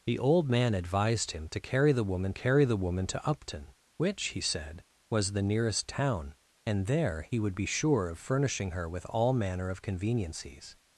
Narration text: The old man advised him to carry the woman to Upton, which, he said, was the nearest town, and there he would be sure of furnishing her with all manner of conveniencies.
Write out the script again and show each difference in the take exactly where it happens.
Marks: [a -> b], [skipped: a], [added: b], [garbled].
The old man advised him to carry the woman [added: carry the woman] to Upton, which, he said, was the nearest town, and there he would be sure of furnishing her with all manner of conveniencies.